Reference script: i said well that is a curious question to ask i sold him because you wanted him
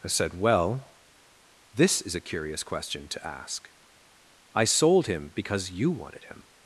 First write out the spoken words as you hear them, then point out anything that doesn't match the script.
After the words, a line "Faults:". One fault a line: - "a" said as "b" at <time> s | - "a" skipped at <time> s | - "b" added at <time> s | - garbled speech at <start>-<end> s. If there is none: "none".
i said well this is a curious question to ask i sold him because you wanted him
Faults:
- "that" said as "this" at 1.7 s